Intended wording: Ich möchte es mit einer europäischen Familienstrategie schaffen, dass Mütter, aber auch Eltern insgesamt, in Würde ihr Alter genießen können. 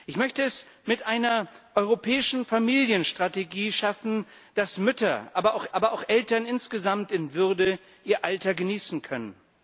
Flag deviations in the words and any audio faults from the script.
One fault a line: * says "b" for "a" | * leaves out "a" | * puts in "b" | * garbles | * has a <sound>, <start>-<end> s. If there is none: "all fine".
* puts in "aber auch"